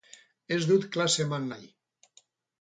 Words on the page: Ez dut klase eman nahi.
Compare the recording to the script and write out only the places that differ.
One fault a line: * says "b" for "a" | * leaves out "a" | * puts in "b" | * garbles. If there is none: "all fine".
all fine